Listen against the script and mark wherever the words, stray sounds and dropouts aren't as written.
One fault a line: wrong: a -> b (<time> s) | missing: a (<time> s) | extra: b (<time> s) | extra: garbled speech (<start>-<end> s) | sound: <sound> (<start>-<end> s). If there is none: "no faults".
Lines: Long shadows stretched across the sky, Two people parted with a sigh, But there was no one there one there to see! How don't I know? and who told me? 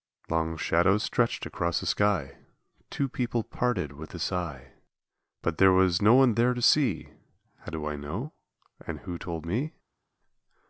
missing: one there (6.5 s)
wrong: don't -> do (7.7 s)